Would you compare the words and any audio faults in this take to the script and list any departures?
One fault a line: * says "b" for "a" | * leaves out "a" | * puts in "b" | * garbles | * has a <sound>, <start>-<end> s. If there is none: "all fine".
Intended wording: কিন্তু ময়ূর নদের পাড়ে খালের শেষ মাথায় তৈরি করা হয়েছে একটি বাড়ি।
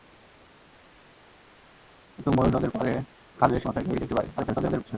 * leaves out "শেষ"
* leaves out "করা হয়েছে"
* garbles